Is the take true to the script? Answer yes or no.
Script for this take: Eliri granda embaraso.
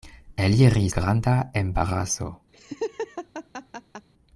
yes